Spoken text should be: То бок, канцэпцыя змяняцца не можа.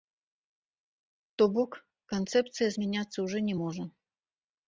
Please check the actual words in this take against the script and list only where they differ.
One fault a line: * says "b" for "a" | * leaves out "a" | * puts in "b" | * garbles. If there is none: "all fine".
* puts in "ўжо"